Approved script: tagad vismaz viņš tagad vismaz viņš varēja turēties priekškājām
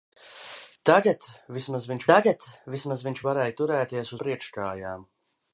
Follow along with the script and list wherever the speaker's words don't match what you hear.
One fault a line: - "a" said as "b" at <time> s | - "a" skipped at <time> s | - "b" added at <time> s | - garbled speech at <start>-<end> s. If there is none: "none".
none